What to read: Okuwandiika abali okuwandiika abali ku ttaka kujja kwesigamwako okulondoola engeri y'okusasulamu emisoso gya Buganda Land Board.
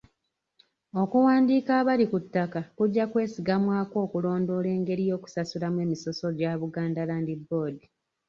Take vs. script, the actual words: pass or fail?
fail